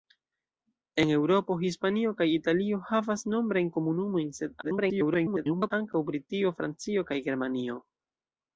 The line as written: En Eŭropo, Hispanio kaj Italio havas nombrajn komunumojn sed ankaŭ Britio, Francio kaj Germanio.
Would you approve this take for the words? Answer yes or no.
no